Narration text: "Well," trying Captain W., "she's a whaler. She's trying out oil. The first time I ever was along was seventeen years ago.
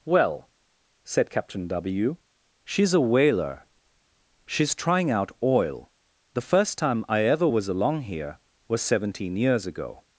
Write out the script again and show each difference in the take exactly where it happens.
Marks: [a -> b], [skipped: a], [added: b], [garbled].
"Well," [trying -> said] Captain W., "she's a whaler. She's trying out oil. The first time I ever was along [added: here] was seventeen years ago.